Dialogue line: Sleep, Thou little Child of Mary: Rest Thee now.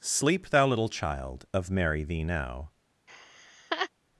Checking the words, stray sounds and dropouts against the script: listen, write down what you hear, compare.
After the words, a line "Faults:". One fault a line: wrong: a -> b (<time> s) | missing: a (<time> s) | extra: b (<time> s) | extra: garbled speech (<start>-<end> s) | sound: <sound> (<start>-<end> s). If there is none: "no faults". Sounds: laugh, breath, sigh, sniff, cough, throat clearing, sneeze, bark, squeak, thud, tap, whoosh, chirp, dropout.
Sleep, Thou little Child of Mary: Thee now.
Faults:
missing: Rest (2.0 s)
sound: laugh (3.1-3.9 s)